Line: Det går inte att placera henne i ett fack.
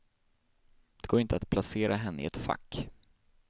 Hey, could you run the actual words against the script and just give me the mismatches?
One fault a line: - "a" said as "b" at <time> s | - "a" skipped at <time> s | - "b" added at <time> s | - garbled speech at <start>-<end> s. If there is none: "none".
none